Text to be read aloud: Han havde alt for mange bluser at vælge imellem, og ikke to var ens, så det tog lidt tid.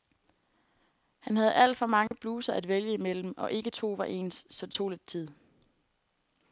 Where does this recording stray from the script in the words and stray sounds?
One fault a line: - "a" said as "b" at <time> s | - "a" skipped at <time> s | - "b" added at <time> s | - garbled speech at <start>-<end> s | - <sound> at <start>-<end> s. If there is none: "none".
- dropout at 2.1-2.1 s